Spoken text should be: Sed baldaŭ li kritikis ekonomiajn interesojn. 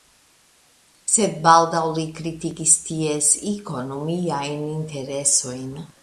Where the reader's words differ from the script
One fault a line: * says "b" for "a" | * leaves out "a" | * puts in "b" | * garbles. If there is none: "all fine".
* puts in "ties"